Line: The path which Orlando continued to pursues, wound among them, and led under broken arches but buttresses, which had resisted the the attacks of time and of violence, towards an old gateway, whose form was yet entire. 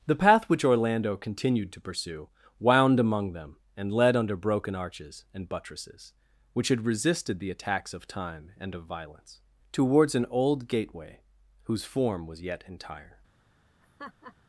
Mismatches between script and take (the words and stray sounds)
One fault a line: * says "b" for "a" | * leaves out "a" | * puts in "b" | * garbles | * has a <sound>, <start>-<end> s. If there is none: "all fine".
* says "pursue" for "pursues"
* says "and" for "but"
* leaves out "the"
* has a laugh, 13.8-14.4 s